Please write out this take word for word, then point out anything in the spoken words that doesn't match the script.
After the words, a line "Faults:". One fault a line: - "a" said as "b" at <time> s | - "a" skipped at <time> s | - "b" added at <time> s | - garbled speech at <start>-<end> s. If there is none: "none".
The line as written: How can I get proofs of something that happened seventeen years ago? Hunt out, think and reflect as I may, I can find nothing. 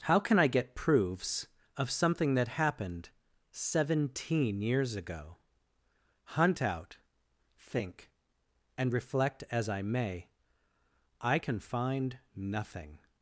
How can I get proofs of something that happened seventeen years ago? Hunt out, think and reflect as I may, I can find nothing.
Faults:
none